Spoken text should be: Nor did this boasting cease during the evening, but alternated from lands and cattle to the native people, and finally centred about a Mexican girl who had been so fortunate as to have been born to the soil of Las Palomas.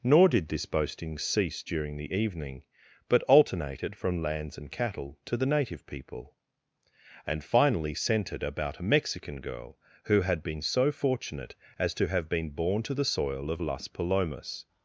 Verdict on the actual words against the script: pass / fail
pass